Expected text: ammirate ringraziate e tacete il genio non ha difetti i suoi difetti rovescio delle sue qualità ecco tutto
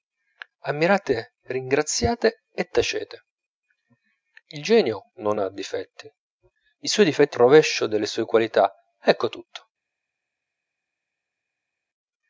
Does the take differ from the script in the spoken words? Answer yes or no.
no